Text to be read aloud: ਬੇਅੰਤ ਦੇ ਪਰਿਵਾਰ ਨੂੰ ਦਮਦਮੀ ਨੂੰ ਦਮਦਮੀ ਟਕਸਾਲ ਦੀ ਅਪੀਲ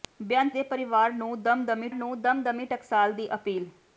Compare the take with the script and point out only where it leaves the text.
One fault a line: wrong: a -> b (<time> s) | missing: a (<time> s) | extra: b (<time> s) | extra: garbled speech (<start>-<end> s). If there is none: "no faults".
no faults